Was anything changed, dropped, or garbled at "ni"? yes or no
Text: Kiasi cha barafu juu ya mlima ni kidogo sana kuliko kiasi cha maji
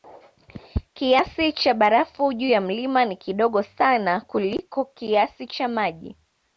no